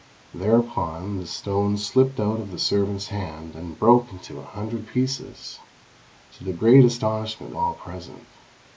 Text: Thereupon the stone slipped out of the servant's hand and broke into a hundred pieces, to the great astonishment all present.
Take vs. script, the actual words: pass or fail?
pass